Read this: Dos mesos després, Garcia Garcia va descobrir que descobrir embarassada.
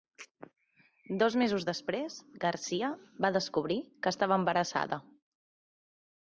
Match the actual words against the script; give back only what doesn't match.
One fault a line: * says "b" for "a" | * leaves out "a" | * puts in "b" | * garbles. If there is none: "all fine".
* leaves out "Garcia"
* says "estava" for "descobrir"